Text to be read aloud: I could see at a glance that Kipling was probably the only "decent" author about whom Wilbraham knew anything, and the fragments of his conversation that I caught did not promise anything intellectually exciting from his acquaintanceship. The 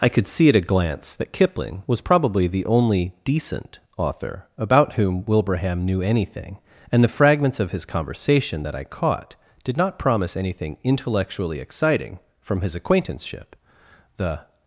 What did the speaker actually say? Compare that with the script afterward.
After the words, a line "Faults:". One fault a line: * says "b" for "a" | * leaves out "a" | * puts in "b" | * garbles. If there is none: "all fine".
I could see at a glance that Kipling was probably the only "decent" author about whom Wilbraham knew anything, and the fragments of his conversation that I caught did not promise anything intellectually exciting from his acquaintanceship. The
Faults:
all fine